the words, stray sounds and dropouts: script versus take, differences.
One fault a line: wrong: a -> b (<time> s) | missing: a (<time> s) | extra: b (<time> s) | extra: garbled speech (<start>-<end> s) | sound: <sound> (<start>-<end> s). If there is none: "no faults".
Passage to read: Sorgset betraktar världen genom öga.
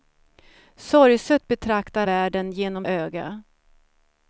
no faults